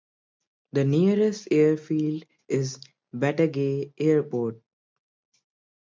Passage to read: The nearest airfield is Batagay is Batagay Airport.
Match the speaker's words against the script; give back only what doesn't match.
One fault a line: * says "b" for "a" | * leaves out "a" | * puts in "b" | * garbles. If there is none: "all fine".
* leaves out "is Batagay"